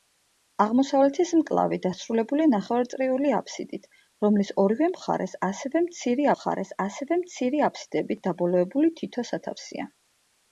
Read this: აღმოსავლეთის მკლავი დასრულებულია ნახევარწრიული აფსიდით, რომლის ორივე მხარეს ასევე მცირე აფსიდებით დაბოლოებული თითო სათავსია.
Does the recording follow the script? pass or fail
fail